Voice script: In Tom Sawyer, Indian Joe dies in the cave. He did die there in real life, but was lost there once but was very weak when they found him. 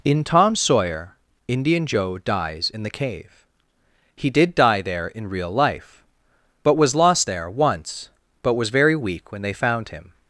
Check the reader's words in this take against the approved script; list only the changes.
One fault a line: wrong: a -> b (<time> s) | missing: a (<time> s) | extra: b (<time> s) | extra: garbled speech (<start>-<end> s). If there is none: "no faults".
no faults